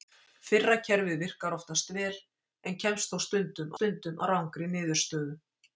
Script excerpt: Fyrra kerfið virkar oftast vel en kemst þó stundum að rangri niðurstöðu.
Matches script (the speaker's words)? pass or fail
fail